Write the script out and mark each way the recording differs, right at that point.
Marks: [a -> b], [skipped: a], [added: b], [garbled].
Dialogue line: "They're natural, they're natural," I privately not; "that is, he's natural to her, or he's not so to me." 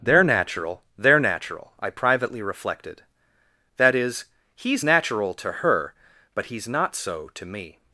"They're natural, they're natural," I privately [not; -> reflected] "that is, he's natural to her, [or -> but] he's not so to me."